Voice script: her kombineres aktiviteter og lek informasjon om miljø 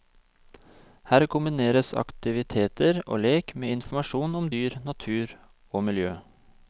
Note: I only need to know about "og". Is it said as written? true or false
true